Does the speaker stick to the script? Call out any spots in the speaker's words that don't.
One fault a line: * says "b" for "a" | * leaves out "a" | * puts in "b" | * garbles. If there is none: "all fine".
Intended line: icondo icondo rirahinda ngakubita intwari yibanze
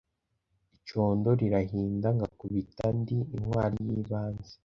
* leaves out "icondo"
* puts in "ndi"